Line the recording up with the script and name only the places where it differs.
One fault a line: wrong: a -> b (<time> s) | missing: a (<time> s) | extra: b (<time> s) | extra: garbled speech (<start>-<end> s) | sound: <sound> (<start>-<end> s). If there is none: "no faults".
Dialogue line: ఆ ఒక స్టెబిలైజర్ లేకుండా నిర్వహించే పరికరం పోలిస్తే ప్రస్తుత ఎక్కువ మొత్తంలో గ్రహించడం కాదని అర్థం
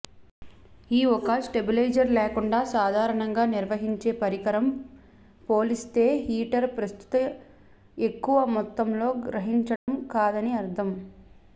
wrong: ఆ -> ఈ (0.9 s)
extra: సాధారణంగా (2.7 s)
extra: హీటర్ (6.2 s)
sound: dropout (9.8-9.9 s)